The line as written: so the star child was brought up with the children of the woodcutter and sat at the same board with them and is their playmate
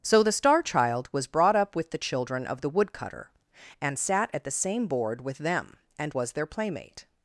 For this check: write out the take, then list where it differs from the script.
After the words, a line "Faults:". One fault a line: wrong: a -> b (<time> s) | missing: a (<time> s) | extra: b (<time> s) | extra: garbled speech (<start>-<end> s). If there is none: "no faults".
so the star child was brought up with the children of the woodcutter and sat at the same board with them and was their playmate
Faults:
wrong: is -> was (6.1 s)